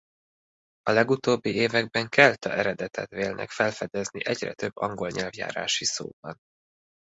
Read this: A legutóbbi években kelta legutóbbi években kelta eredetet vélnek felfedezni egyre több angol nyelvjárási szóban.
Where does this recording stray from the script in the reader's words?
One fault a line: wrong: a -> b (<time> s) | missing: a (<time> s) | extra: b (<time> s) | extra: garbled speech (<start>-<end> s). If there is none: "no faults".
missing: legutóbbi években kelta (2.5 s)